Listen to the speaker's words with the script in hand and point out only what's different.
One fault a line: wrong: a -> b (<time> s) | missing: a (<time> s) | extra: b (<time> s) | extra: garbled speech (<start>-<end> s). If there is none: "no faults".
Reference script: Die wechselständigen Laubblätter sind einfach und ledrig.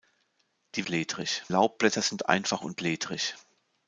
wrong: wechselständigen -> ledrig (0.9 s)